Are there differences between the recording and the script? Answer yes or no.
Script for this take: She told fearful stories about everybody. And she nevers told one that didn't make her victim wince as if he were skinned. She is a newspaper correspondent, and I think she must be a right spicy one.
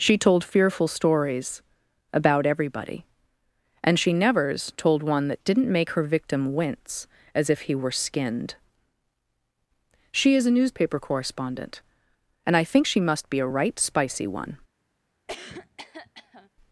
no